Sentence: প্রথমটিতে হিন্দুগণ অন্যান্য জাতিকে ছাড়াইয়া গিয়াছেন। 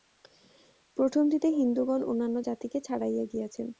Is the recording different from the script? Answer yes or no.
no